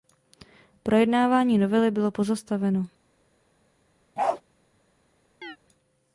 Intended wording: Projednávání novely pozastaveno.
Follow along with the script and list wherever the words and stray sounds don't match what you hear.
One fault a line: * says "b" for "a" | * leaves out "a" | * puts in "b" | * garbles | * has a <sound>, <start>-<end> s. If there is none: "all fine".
* puts in "bylo"
* has a bark, 4.2-4.4 s
* has a chirp, 5.4-5.6 s